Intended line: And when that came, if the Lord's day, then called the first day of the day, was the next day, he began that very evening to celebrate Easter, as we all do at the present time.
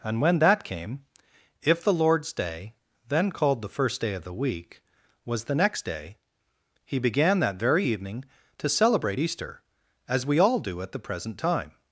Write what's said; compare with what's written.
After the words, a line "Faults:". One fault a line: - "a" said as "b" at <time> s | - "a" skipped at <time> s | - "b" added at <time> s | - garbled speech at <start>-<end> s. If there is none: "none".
And when that came, if the Lord's day, then called the first day of the week, was the next day, he began that very evening to celebrate Easter, as we all do at the present time.
Faults:
- "day" said as "week" at 4.3 s